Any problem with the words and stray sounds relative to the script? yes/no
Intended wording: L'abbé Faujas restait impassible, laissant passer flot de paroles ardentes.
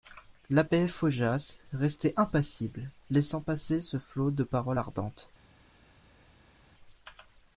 yes